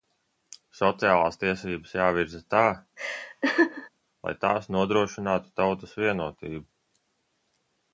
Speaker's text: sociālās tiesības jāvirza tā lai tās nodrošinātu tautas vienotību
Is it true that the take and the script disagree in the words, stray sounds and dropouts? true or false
true